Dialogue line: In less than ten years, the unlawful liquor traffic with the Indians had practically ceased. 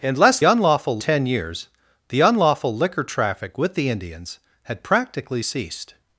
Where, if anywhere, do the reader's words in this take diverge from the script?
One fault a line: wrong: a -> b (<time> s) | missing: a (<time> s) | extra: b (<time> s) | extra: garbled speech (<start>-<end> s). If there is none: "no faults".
wrong: than -> unlawful (0.4 s)